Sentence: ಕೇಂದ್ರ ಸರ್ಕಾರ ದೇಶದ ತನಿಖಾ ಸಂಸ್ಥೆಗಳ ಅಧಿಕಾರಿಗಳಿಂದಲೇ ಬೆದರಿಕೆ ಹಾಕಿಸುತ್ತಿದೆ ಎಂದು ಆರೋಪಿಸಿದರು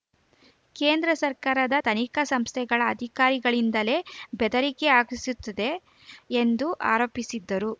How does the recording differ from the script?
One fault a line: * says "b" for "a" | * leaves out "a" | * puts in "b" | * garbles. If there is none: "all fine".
* leaves out "ದೇಶದ"